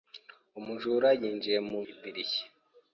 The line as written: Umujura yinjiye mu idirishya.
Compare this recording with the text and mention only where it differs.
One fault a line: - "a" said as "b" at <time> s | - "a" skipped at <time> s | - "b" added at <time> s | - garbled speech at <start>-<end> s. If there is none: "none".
none